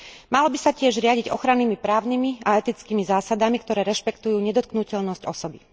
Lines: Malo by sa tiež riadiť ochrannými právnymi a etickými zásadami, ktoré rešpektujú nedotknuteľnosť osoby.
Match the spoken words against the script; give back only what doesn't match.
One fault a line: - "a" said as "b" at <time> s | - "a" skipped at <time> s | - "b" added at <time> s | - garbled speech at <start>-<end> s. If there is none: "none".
none